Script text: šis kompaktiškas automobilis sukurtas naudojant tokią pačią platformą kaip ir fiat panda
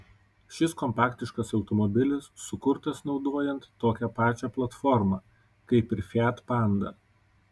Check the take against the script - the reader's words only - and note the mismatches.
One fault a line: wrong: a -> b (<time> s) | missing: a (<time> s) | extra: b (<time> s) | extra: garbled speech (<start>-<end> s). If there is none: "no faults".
no faults